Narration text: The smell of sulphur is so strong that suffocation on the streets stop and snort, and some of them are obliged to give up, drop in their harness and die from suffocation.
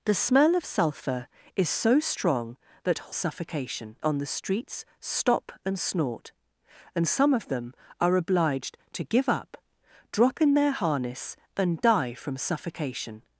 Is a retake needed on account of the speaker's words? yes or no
no